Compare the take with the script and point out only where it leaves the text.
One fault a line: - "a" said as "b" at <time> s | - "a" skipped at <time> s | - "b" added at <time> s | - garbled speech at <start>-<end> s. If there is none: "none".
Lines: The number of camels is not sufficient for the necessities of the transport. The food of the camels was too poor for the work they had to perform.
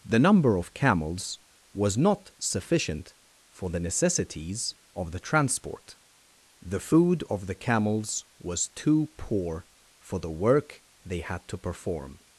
- "is" said as "was" at 1.7 s